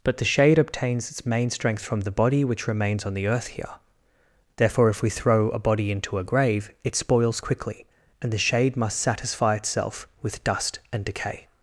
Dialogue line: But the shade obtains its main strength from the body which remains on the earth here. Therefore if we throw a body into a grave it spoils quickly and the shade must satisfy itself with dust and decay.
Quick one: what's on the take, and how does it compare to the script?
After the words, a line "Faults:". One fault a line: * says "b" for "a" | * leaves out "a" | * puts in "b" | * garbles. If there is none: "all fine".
But the shade obtains its main strength from the body which remains on the earth here. Therefore if we throw a body into a grave it spoils quickly and the shade must satisfy itself with dust and decay.
Faults:
all fine